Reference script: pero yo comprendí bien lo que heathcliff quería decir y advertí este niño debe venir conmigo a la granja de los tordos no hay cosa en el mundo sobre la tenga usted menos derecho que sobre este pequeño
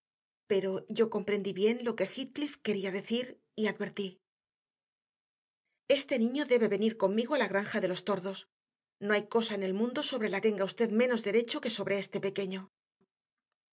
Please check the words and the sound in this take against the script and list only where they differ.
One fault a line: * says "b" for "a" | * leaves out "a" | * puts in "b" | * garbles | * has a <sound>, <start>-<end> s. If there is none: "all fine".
all fine